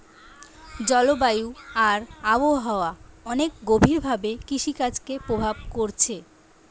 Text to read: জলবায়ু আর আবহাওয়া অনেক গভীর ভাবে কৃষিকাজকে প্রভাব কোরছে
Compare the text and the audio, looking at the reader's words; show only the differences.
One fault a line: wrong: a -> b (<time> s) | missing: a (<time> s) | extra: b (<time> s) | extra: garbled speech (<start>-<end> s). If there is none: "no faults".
no faults